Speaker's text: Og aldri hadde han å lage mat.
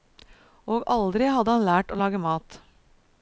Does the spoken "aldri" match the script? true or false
true